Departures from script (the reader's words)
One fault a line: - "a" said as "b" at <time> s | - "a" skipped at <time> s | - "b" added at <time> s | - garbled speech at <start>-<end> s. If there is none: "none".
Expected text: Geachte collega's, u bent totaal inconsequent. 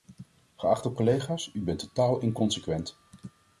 none